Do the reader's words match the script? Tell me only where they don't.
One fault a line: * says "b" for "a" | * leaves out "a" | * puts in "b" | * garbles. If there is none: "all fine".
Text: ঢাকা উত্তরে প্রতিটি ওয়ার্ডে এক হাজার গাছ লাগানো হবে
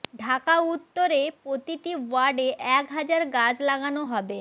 all fine